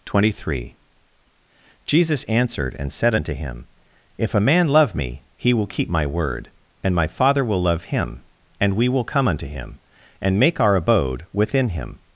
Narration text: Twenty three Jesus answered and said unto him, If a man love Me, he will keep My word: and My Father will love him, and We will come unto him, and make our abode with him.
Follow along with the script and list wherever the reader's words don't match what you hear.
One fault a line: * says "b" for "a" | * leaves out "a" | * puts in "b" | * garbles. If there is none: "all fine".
* says "within" for "with"